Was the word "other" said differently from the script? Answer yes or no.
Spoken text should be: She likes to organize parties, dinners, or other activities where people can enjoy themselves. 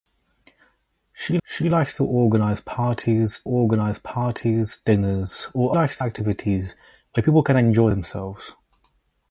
yes